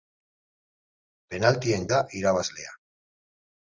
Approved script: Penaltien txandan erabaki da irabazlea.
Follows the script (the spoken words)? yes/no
no